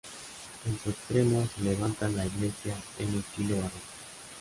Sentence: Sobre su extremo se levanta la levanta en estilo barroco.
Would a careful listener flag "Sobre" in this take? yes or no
yes